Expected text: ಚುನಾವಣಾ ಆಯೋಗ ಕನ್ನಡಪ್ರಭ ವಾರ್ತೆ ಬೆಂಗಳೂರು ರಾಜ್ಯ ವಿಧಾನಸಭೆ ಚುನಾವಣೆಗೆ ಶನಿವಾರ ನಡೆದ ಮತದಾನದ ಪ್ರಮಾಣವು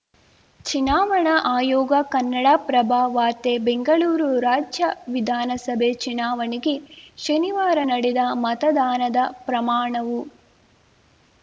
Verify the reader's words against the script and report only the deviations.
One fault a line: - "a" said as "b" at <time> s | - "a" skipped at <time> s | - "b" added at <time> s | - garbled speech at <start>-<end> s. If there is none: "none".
none